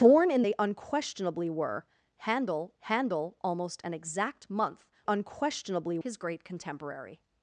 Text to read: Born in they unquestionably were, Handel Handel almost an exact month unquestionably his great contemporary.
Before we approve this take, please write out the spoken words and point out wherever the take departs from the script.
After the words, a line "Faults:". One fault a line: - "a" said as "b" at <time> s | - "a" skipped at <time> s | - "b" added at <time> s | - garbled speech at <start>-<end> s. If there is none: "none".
Born in they unquestionably were, Handel Handel almost an exact month unquestionably his great contemporary.
Faults:
none